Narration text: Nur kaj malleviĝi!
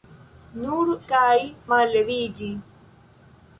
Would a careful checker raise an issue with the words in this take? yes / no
no